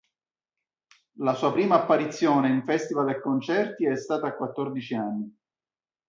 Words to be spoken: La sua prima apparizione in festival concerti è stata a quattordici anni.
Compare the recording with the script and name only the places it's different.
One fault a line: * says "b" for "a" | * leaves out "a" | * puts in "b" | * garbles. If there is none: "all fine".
* puts in "e"